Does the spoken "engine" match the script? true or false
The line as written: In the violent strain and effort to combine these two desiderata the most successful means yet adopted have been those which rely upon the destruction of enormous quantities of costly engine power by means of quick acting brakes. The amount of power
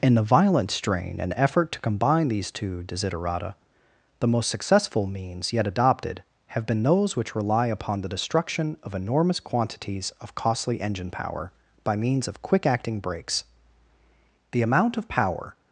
true